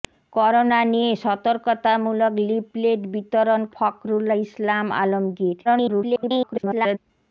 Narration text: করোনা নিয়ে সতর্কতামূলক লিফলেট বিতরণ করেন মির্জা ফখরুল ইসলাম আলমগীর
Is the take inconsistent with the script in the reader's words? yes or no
yes